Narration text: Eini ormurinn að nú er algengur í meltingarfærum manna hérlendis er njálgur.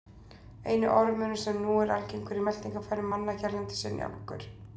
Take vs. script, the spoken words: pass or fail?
fail